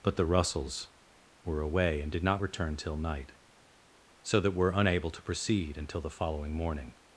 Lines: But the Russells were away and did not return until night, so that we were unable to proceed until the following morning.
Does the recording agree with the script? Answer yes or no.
no